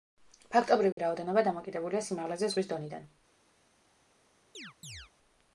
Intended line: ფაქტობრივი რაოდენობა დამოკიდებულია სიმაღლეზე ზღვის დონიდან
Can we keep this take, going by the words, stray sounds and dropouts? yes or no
no